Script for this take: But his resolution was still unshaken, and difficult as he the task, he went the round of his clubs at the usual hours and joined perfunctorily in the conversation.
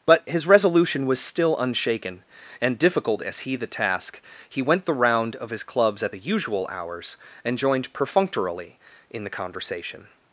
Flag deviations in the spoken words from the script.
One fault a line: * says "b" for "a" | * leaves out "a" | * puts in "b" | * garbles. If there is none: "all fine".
all fine